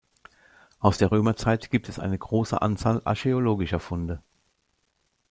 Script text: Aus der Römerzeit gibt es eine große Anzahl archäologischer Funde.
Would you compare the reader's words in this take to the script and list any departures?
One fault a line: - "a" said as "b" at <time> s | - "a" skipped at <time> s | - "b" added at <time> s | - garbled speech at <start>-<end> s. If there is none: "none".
none